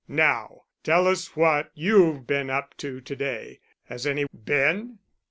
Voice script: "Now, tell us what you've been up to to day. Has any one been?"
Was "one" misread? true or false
true